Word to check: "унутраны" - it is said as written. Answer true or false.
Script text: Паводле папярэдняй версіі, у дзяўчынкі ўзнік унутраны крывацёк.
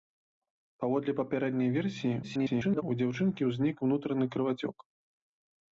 true